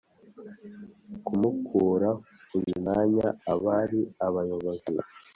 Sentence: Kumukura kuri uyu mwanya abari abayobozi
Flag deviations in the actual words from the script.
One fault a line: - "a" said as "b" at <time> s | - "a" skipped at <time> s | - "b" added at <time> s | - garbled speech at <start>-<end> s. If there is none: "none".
- "kuri" skipped at 2.1 s